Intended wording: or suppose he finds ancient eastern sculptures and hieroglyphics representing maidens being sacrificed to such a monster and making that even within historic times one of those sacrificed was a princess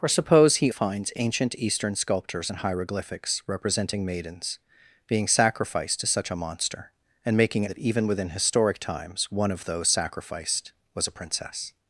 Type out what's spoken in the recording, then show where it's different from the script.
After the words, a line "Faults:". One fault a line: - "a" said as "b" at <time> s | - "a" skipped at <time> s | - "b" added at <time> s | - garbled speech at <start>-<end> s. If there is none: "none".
or suppose he finds ancient eastern sculptures and hieroglyphics representing maidens being sacrificed to such a monster and making that even within historic times one of those sacrificed was a princess
Faults:
none